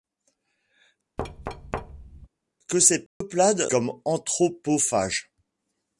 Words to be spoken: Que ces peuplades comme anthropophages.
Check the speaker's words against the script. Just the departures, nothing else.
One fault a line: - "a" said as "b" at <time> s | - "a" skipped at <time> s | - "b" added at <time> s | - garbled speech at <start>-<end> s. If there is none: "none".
none